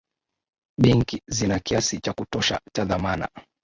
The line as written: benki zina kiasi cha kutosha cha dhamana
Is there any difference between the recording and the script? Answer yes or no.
no